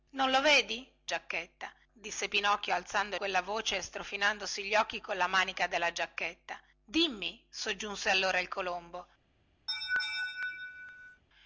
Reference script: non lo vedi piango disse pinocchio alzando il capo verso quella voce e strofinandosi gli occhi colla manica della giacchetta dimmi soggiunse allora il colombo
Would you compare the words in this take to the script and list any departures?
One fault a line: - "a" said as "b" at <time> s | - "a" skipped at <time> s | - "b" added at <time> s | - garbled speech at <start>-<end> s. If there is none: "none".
- "piango" said as "giacchetta" at 1.0 s
- "il capo verso" skipped at 3.1 s